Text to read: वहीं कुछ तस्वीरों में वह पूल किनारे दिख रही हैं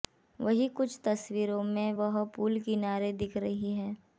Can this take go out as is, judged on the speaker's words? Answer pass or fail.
pass